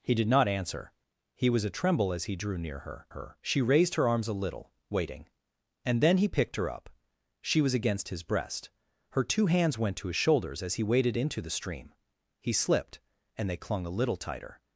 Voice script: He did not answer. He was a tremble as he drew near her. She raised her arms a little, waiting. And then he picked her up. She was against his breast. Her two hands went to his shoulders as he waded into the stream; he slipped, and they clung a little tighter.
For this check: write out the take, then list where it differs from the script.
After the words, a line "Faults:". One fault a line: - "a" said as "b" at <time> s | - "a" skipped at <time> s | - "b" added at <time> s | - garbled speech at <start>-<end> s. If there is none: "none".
He did not answer. He was a tremble as he drew near her her. She raised her arms a little, waiting. And then he picked her up. She was against his breast. Her two hands went to his shoulders as he waded into the stream; he slipped, and they clung a little tighter.
Faults:
- "her" added at 3.1 s